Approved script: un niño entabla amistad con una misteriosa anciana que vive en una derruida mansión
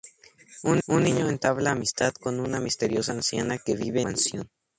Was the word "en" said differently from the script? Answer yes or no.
yes